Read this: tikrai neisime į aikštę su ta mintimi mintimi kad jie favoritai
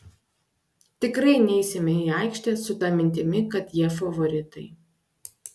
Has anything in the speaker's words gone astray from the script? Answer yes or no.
yes